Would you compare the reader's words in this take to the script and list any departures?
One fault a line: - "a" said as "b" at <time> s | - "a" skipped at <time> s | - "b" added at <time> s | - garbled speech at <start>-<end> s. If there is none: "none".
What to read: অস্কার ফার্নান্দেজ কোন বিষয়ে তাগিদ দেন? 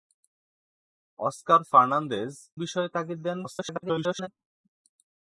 - "কোন" skipped at 2.3 s
- garbled speech at 3.4-4.3 s